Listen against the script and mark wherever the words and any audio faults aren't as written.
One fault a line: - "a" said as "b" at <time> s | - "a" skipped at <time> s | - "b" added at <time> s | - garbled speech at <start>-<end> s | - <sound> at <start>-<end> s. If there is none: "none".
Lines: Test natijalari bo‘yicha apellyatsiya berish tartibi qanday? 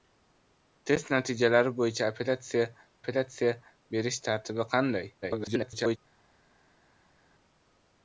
- "apellyatsiya" added at 3.0 s
- garbled speech at 5.2-6.0 s